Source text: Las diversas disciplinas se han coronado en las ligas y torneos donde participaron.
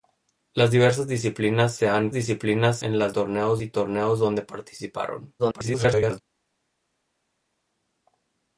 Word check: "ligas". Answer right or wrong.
wrong